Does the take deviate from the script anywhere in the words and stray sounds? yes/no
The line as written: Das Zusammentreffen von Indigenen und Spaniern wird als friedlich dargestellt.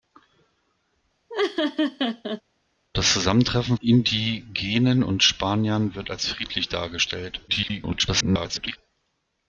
yes